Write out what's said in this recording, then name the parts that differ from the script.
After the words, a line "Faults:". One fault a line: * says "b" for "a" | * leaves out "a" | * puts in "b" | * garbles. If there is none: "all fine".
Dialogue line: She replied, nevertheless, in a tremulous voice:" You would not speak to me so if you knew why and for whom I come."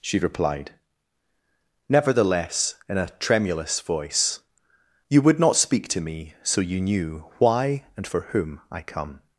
She replied, nevertheless, in a tremulous voice:" You would not speak to me so you knew why and for whom I come."
Faults:
* leaves out "if"